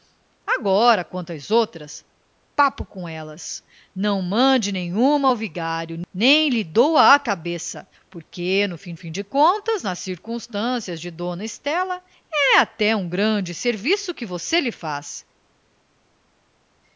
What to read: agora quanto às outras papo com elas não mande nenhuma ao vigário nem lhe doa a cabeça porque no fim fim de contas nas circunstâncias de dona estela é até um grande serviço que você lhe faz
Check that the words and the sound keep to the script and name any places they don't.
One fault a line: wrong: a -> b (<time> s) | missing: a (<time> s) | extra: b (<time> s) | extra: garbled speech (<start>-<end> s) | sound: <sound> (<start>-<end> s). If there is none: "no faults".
no faults